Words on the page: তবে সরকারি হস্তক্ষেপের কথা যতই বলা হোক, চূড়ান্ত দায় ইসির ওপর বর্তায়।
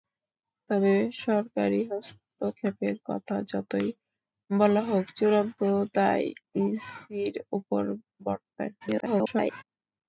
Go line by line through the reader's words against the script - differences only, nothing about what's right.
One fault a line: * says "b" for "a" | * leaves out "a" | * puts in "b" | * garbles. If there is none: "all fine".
* garbles